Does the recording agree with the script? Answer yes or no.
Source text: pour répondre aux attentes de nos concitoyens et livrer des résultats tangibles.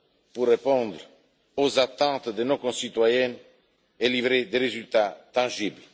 yes